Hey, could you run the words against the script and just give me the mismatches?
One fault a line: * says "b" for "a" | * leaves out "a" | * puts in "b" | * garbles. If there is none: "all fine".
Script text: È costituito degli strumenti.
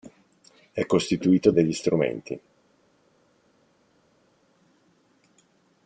all fine